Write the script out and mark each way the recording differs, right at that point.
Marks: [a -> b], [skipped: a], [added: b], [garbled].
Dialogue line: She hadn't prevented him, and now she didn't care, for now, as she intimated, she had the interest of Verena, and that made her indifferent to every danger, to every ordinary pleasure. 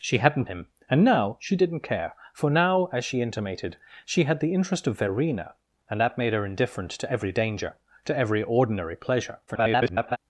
She hadn't [skipped: prevented] him, and now she didn't care, for now, as she intimated, she had the interest of Verena, and that made her indifferent to every danger, to every ordinary pleasure. [garbled]